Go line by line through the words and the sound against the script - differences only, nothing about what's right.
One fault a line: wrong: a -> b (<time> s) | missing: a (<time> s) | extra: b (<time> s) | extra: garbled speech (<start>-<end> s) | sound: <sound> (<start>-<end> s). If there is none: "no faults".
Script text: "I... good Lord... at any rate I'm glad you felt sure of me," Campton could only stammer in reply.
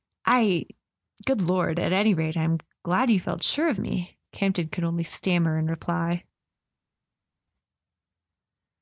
no faults